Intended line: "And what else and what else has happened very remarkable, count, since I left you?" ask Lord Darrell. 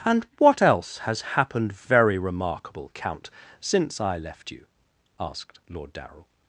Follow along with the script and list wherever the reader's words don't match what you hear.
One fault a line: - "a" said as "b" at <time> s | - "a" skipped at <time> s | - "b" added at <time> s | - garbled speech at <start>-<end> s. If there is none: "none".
- "and what else" skipped at 1.0 s
- "ask" said as "asked" at 5.2 s